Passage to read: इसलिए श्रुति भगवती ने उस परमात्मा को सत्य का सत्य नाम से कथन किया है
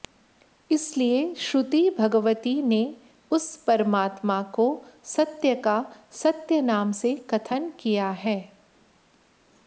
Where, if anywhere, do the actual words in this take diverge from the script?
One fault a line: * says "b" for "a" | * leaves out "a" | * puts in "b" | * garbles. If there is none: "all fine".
all fine